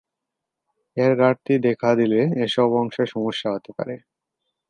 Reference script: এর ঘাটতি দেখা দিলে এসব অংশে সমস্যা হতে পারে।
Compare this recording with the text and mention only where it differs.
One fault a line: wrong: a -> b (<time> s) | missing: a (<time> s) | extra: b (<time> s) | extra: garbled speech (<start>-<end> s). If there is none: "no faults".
no faults